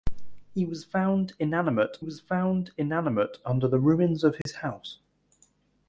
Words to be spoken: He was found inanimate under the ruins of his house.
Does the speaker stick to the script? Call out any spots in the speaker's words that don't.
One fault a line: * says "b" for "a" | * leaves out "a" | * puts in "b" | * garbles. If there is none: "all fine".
* puts in "was found inanimate"